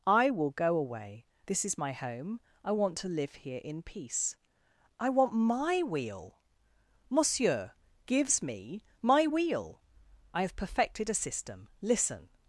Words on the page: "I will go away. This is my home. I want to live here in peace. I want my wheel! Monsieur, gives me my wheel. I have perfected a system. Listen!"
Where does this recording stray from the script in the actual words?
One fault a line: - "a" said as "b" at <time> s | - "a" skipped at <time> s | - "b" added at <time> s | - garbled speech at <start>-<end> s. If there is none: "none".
none